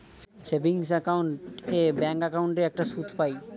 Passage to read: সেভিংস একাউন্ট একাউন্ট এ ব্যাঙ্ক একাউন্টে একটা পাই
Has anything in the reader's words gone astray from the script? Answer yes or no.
yes